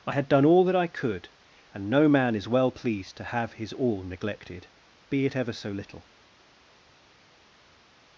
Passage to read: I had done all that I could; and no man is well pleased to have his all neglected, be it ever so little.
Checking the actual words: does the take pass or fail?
pass